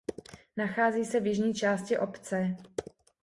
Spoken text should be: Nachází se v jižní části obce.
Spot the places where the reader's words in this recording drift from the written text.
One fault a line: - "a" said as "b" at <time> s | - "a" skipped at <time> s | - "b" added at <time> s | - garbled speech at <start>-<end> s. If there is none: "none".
none